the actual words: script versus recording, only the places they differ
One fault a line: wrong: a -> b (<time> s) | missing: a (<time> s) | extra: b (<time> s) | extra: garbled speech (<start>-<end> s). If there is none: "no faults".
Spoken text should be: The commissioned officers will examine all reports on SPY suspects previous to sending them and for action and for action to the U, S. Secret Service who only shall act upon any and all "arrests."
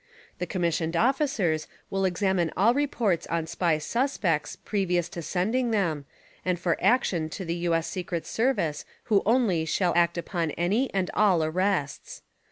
missing: and for action (7.3 s)